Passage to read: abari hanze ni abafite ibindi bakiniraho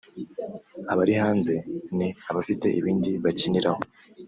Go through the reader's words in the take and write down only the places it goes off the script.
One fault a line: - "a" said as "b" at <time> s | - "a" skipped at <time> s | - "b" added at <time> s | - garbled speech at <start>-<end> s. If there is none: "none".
none